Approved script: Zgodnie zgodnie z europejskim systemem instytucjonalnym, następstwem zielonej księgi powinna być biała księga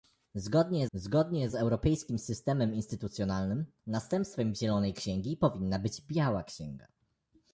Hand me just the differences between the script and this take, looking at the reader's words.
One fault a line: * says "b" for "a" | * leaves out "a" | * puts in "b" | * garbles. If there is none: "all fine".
all fine